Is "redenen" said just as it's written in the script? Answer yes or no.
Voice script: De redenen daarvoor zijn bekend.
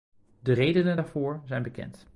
yes